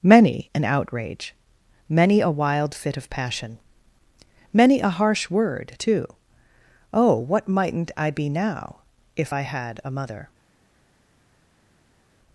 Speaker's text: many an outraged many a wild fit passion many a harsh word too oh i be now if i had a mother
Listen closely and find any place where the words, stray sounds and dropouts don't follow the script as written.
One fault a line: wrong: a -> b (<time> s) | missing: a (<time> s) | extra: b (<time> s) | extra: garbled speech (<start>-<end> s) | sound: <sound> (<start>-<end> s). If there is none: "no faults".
wrong: outraged -> outrage (0.7 s)
extra: of (3.0 s)
extra: what mightn't (7.2 s)